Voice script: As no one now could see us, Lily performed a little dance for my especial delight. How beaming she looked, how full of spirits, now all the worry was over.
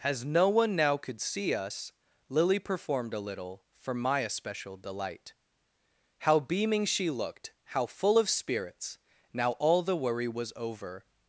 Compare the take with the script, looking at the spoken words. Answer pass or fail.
fail